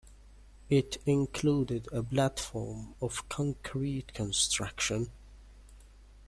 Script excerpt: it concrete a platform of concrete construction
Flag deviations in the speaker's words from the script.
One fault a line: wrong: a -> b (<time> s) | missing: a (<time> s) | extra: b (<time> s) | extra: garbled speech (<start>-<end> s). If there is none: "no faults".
wrong: concrete -> included (1.1 s)